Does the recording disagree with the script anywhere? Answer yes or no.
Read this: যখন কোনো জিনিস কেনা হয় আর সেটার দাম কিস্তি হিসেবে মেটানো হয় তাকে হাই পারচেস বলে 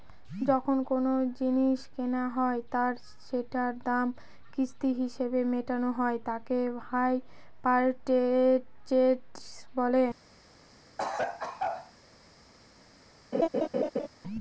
no